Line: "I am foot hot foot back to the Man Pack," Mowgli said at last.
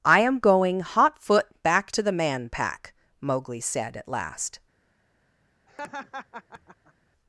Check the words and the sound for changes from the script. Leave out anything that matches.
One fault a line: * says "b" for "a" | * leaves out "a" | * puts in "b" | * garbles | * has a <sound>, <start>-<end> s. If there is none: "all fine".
* says "going" for "foot"
* has a laugh, 5.7-6.9 s